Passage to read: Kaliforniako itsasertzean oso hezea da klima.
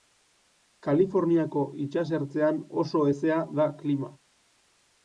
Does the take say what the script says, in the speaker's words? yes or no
yes